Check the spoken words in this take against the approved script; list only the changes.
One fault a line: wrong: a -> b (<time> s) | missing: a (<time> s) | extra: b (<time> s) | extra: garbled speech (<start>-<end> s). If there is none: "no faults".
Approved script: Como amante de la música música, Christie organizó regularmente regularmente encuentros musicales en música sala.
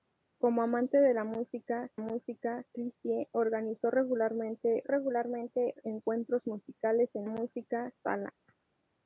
no faults